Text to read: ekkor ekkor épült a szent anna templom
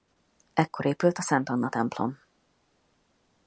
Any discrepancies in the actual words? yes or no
yes